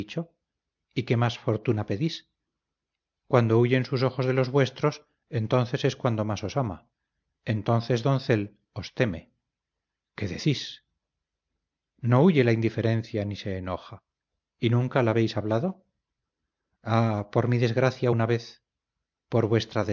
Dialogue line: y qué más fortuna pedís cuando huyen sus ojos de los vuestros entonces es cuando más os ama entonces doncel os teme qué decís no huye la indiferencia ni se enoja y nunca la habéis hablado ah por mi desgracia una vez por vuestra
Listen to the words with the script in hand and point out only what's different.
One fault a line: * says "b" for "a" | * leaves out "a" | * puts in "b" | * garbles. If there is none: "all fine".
all fine